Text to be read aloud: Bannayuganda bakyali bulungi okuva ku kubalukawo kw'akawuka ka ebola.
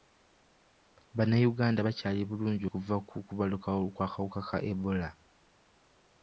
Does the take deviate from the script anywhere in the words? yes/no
no